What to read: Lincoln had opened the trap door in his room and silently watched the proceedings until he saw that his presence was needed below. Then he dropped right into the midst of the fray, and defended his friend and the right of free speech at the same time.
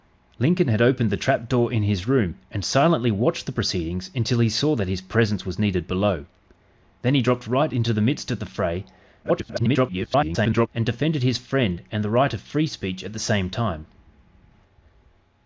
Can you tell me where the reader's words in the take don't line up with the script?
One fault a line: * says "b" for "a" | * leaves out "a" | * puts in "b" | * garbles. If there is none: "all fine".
* garbles